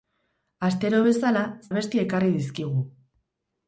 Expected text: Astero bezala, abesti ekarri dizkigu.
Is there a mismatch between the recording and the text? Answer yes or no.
no